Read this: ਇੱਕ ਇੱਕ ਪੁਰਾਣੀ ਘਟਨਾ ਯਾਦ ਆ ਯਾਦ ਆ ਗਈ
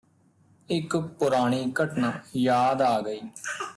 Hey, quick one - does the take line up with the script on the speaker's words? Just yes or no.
no